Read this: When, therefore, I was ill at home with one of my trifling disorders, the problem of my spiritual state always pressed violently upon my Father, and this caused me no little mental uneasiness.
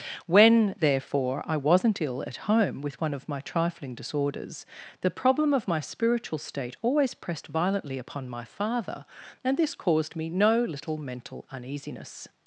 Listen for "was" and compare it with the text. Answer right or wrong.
wrong